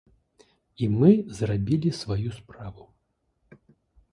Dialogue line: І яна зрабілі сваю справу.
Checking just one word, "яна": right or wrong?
wrong